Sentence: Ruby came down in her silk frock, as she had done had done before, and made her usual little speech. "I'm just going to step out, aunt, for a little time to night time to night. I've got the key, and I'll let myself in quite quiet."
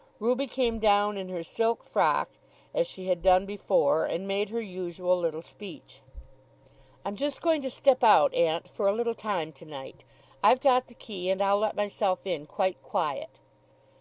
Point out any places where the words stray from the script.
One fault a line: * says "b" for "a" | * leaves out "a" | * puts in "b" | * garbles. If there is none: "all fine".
* leaves out "had done"
* leaves out "time to night"